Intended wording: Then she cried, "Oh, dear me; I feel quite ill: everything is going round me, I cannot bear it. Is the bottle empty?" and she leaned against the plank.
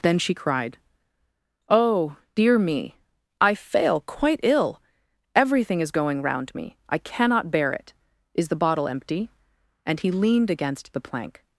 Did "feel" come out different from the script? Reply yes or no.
yes